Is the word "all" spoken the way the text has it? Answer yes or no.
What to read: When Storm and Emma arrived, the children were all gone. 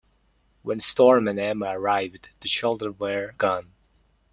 no